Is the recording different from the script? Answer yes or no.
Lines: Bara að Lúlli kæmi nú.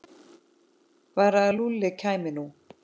no